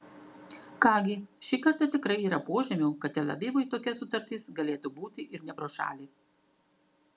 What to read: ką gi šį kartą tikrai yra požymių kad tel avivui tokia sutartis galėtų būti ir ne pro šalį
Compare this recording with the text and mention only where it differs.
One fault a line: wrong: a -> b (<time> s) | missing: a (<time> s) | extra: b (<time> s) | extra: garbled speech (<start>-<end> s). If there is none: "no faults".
no faults